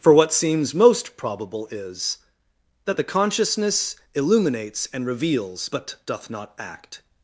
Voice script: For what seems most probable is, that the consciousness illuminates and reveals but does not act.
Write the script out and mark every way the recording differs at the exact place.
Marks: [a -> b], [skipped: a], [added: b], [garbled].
For what seems most probable is, that the consciousness illuminates and reveals but [does -> doth] not act.